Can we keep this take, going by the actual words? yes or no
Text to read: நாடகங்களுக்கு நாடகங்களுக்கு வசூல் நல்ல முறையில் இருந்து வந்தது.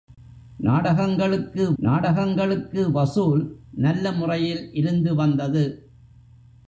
yes